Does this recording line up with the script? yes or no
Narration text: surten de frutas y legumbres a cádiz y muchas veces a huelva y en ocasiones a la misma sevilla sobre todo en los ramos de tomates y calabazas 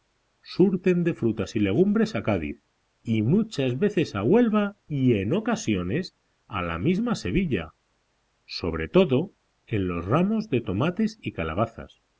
yes